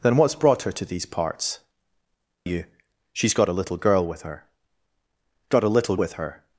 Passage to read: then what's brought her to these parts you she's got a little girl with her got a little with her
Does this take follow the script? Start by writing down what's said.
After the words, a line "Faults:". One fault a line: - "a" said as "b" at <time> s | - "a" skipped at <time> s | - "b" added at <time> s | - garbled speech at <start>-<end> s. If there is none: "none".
then what's brought her to these parts you she's got a little girl with her got a little with her
Faults:
none